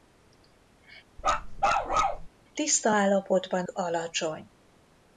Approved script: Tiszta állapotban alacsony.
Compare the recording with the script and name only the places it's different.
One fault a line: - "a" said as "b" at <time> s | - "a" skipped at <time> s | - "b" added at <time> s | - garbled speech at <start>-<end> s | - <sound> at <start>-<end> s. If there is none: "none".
- bark at 1.2-2.3 s